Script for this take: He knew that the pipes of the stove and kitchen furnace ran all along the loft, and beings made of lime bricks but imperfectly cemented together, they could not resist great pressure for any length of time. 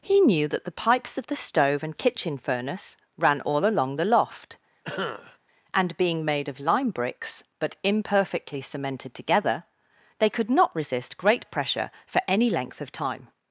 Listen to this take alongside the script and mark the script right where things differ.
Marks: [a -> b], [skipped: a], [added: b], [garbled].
He knew that the pipes of the stove and kitchen furnace ran all along the loft, and [beings -> being] made of lime bricks but imperfectly cemented together, they could not resist great pressure for any length of time.